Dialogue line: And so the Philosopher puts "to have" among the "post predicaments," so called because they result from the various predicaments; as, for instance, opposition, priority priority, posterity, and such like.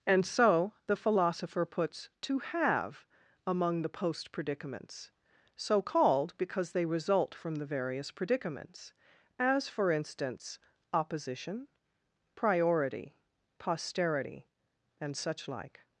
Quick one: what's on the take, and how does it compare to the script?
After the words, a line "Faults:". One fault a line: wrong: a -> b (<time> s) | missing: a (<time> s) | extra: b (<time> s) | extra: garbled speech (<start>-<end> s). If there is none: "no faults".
And so the Philosopher puts "to have" among the "post predicaments," so called because they result from the various predicaments; as, for instance, opposition, priority, posterity, and such like.
Faults:
missing: priority (13.2 s)